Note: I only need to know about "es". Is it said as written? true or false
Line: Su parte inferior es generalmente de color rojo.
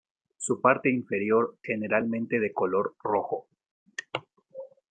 false